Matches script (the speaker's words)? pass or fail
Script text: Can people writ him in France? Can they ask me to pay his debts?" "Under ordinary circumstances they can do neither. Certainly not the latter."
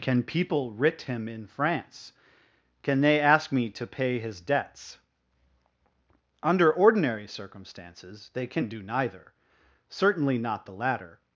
pass